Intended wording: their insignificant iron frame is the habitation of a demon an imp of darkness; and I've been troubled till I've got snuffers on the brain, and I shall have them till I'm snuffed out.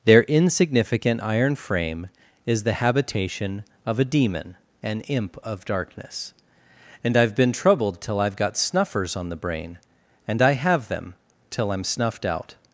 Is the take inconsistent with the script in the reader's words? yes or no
yes